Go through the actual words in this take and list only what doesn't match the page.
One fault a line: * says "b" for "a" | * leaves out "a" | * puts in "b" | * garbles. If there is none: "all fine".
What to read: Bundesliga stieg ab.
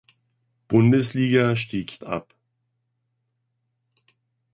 all fine